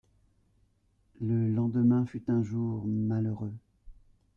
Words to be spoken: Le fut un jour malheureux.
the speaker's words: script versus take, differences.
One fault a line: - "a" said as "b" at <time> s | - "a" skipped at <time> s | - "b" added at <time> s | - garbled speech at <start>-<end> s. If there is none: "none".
- "lendemain" added at 1.5 s